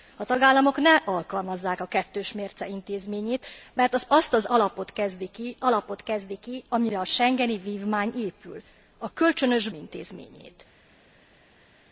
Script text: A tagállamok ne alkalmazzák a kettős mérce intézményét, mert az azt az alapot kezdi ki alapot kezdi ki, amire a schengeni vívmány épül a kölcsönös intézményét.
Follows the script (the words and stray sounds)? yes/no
yes